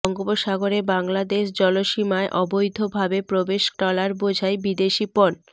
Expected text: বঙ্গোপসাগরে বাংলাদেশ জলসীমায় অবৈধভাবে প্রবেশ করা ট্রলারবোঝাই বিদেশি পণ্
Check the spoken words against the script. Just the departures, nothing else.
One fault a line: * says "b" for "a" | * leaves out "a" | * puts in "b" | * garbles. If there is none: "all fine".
* leaves out "করা"